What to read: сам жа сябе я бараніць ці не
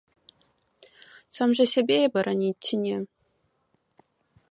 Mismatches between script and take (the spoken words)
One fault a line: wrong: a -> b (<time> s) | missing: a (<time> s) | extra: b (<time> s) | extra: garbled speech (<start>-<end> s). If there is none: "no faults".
no faults